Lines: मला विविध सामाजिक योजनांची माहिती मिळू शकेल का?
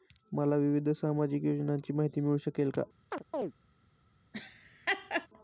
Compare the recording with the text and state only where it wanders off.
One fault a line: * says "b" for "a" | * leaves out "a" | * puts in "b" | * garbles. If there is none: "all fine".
all fine